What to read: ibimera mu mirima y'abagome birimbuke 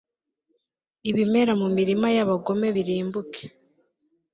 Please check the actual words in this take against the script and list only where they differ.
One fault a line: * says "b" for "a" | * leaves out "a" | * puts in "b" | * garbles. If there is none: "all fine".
all fine